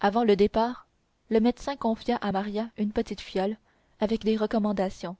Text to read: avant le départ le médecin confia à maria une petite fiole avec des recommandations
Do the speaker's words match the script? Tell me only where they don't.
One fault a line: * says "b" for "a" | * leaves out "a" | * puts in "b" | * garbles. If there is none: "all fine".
all fine